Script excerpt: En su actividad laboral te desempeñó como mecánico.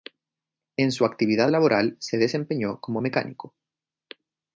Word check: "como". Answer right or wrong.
right